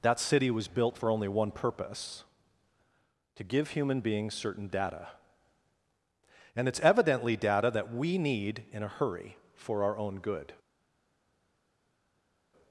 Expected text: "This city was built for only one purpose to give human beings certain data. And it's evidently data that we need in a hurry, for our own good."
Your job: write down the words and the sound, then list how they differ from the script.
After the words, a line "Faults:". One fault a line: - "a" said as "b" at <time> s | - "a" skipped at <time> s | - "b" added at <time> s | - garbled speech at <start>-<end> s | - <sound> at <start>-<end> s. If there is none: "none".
"That city was built for only one purpose to give human beings certain data. And it's evidently data that we need in a hurry, for our own good."
Faults:
- "This" said as "That" at 0.0 s